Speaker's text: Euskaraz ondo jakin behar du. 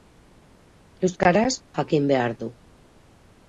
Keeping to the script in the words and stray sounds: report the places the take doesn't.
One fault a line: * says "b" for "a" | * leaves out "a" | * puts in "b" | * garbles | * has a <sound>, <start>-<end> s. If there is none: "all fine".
* leaves out "ondo"